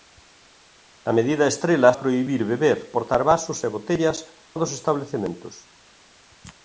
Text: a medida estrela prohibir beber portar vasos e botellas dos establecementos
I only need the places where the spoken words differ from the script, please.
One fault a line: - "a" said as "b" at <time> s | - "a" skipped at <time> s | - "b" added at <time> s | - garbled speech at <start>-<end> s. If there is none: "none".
none